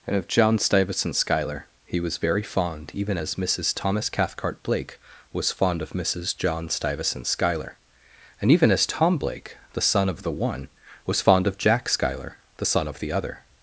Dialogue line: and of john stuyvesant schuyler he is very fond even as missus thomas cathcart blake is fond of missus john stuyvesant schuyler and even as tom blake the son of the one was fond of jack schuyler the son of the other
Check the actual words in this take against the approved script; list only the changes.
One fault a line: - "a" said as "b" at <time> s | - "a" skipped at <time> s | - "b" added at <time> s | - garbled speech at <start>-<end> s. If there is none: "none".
- "is" said as "was" at 2.0 s
- "is" said as "was" at 5.3 s